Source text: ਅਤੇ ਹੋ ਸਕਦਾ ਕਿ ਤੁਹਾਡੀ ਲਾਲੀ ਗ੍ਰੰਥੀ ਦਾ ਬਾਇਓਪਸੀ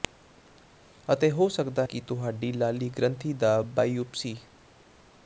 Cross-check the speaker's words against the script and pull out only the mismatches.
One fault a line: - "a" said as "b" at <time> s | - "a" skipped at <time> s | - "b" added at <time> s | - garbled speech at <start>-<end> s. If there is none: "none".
none